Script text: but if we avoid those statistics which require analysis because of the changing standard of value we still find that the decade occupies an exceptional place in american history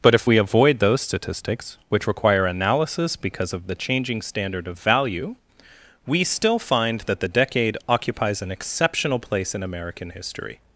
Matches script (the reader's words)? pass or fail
pass